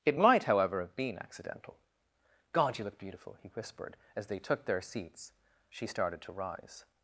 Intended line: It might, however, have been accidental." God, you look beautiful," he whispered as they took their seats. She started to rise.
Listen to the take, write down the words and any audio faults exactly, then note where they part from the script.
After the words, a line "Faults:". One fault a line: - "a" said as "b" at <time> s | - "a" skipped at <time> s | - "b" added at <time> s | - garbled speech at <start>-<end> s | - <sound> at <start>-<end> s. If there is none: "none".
It might, however, have been accidental." God, you look beautiful," he whispered as they took their seats. She started to rise.
Faults:
none